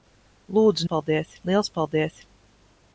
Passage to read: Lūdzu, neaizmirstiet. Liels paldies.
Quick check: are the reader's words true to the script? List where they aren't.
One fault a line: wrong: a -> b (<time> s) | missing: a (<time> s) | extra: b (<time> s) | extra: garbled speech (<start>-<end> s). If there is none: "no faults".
wrong: neaizmirstiet -> paldies (0.9 s)